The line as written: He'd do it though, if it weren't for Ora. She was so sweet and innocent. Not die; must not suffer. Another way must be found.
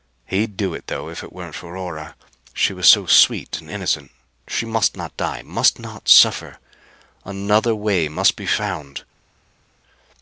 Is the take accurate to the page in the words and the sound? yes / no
no